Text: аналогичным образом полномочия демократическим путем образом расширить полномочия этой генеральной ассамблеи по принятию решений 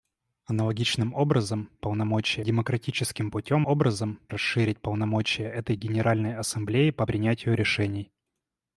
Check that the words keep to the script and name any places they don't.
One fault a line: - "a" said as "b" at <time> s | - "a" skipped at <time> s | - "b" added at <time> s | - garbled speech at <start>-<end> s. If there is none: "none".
none